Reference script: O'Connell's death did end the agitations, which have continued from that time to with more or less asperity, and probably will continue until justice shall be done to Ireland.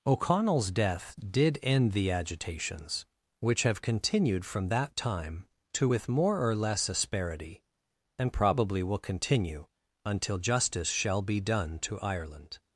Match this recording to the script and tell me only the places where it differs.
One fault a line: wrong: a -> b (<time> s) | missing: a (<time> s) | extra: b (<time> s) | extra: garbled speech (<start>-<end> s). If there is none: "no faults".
no faults